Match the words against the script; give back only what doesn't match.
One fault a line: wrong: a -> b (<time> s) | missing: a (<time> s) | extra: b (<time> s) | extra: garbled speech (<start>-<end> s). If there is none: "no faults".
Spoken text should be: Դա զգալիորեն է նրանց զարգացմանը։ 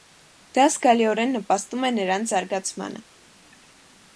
extra: նպաստում (1.4 s)